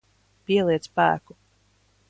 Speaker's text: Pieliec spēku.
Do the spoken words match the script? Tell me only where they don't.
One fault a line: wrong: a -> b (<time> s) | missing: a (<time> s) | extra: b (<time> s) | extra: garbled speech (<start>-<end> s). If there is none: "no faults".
no faults